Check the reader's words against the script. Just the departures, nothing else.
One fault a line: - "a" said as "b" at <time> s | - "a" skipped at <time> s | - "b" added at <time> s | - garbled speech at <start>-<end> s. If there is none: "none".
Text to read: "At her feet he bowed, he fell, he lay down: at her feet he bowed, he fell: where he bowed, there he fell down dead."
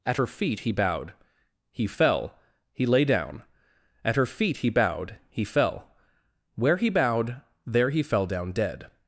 none